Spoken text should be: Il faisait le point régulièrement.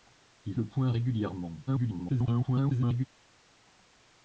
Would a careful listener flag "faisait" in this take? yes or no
yes